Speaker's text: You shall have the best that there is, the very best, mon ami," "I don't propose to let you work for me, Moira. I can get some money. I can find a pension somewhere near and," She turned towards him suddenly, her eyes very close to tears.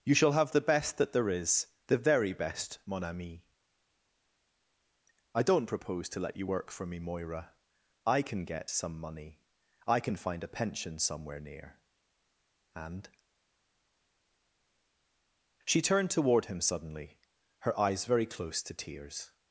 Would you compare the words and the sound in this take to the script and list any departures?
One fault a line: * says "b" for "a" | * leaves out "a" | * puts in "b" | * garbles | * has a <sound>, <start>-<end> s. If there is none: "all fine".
* says "toward" for "towards"